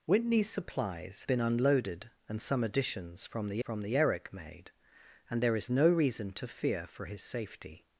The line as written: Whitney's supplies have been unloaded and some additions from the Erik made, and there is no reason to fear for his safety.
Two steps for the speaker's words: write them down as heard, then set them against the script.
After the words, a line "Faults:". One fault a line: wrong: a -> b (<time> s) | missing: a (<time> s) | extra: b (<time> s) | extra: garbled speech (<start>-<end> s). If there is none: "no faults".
Whitney's supplies been unloaded and some additions from the from the Erik made, and there is no reason to fear for his safety.
Faults:
missing: have (1.2 s)
extra: from the (3.6 s)